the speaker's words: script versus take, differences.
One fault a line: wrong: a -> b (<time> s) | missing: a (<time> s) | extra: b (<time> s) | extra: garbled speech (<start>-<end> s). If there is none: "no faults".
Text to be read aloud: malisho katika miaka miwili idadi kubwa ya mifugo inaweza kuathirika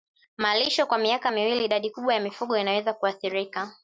wrong: katika -> kwa (0.8 s)